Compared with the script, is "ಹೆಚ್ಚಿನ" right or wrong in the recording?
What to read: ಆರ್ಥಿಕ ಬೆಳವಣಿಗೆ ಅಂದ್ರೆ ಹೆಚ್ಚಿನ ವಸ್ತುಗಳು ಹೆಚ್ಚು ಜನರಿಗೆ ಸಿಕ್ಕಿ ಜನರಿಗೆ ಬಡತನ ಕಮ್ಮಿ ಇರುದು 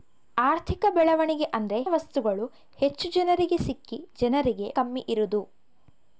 wrong